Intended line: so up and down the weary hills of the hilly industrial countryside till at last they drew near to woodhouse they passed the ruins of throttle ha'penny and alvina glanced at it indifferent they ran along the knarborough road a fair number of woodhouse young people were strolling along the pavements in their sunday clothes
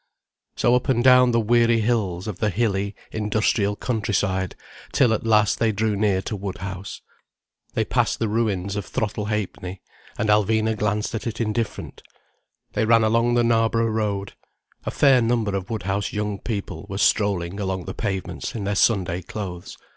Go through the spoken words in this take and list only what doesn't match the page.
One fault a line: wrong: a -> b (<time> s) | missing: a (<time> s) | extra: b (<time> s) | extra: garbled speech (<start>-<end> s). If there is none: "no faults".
no faults